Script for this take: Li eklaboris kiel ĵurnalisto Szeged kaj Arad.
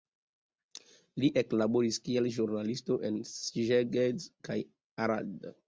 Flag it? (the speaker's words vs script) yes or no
yes